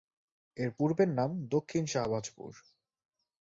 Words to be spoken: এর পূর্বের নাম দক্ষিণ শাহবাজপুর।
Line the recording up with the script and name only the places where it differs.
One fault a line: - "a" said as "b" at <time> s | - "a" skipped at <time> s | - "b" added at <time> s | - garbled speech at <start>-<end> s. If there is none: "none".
none